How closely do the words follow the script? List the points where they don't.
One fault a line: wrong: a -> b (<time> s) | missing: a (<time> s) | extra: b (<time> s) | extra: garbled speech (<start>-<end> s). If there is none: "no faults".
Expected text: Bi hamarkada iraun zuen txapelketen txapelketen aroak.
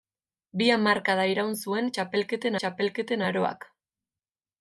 no faults